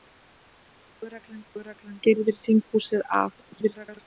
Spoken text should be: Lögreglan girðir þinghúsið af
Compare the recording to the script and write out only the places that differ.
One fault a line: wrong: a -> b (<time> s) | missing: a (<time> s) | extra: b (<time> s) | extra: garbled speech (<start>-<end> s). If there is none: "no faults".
extra: lögreglan (1.6 s)
extra: garbled speech (3.4-4.0 s)